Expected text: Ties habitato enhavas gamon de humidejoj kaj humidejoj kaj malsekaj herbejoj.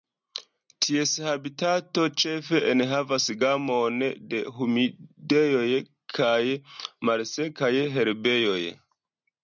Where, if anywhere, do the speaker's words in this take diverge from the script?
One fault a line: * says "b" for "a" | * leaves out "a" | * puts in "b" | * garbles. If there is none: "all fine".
* puts in "ĉefe"
* leaves out "humidejoj kaj"